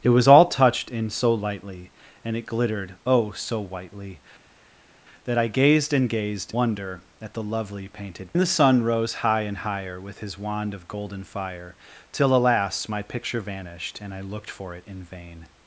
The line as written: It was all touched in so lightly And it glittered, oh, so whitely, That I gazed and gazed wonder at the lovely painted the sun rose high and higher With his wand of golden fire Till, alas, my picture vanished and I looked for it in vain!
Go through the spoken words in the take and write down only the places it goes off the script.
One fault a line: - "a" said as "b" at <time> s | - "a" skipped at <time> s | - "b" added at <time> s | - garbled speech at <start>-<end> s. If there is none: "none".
none